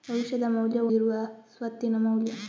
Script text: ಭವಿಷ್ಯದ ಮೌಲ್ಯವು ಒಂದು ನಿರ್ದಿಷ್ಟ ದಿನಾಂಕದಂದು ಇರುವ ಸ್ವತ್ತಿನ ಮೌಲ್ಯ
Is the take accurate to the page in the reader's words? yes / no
no